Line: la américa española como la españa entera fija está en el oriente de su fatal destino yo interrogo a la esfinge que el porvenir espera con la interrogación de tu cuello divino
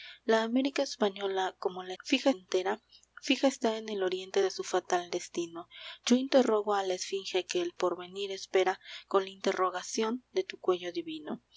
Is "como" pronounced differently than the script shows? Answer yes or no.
no